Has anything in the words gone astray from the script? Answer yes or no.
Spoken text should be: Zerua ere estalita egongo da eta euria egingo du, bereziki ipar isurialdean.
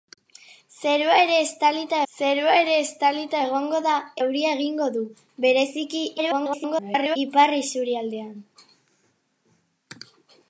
yes